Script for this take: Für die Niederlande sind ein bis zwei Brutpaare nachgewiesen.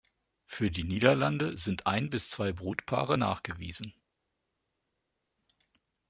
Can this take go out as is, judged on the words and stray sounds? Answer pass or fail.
pass